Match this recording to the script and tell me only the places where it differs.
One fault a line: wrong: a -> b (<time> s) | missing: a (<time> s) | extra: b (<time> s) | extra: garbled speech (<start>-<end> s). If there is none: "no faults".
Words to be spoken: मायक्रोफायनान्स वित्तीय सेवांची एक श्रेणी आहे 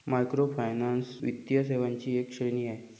no faults